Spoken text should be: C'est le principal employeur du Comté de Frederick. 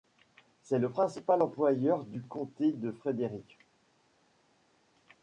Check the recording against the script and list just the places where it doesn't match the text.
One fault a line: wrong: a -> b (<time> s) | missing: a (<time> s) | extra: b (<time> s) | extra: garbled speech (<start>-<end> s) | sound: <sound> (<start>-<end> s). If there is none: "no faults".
no faults